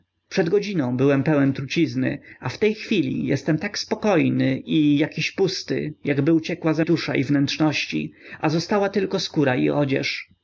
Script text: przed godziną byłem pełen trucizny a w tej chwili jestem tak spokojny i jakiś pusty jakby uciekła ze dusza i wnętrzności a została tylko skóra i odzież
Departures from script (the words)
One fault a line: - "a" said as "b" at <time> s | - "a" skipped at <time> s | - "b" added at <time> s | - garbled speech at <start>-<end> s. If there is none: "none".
none